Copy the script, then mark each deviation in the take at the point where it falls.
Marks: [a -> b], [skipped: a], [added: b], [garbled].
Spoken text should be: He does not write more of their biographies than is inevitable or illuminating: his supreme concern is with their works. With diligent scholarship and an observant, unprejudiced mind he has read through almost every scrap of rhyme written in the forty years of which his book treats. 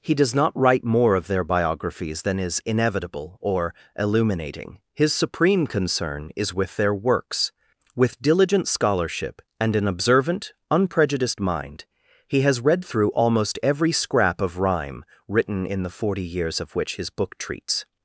He does not write more of their biographies than is inevitable or illuminating: his supreme concern is with their works. With diligent scholarship and an observant, unprejudiced mind he has read through almost every scrap of rhyme written in the forty years of which his book treats.